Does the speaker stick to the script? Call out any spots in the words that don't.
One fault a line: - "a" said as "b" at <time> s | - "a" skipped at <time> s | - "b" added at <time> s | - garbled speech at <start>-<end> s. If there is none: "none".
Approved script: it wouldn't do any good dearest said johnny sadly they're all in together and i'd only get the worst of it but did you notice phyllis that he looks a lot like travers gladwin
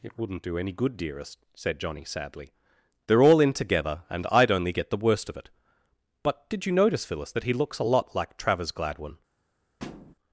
none